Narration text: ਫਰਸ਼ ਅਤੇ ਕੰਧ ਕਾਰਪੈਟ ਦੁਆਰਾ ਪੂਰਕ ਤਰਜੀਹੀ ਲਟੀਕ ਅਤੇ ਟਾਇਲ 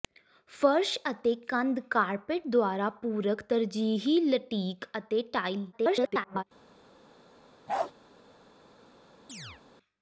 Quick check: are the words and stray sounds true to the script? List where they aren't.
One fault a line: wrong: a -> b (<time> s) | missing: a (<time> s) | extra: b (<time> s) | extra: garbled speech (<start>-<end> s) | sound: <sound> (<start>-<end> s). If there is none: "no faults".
extra: garbled speech (5.7-6.4 s)
sound: bark (7.7-7.9 s)
sound: chirp (9.3-9.6 s)